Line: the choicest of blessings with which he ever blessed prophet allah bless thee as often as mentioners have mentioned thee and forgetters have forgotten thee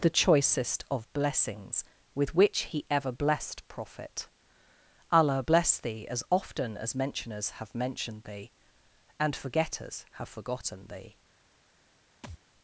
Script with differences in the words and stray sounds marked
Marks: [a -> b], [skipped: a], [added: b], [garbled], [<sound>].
the choicest of blessings with which he ever blessed prophet allah bless thee as often as mentioners have mentioned thee and forgetters have forgotten thee [thud]